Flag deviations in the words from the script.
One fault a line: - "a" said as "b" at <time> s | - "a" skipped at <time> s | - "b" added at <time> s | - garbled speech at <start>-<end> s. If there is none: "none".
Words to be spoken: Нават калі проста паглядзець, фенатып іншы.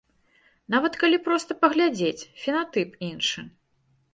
none